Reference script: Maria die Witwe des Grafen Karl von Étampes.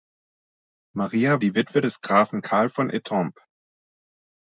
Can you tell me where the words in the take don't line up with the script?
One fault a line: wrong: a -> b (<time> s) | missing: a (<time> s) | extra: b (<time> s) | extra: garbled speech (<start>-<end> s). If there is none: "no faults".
no faults